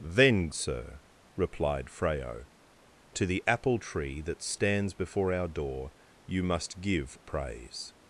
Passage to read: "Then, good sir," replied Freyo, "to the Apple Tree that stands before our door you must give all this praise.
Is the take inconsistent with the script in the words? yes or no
yes